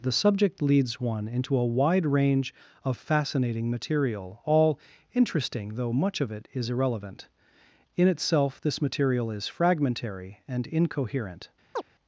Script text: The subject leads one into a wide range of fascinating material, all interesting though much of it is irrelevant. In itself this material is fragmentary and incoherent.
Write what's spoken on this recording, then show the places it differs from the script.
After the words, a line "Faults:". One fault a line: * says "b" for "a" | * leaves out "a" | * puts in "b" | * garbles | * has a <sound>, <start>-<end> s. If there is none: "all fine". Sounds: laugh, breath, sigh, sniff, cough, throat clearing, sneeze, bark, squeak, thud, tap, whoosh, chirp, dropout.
The subject leads one into a wide range of fascinating material, all interesting though much of it is irrelevant. In itself this material is fragmentary and incoherent.
Faults:
* has a chirp, 11.7-11.8 s